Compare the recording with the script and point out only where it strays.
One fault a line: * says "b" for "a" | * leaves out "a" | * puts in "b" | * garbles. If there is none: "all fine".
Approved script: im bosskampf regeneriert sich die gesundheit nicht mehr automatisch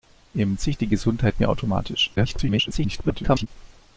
* leaves out "bosskampf regeneriert"
* leaves out "nicht"
* garbles